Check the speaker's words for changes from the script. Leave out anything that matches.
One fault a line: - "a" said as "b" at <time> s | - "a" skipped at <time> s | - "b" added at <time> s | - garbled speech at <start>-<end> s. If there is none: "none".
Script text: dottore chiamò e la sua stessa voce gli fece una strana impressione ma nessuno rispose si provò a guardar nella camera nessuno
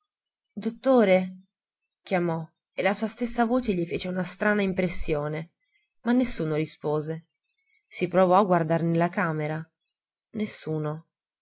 none